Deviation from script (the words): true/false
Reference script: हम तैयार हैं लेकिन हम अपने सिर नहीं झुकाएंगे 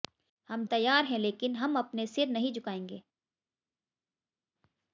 false